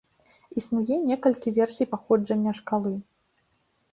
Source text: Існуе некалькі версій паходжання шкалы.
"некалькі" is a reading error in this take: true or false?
false